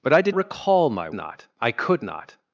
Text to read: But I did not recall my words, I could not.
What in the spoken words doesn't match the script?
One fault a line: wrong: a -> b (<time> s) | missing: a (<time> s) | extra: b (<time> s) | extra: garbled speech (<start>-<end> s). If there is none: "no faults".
missing: not (0.3 s)
wrong: words -> not (1.1 s)